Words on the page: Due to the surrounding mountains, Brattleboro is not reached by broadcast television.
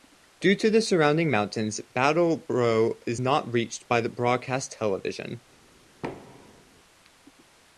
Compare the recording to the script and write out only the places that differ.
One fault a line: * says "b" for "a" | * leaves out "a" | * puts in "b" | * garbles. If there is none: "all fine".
all fine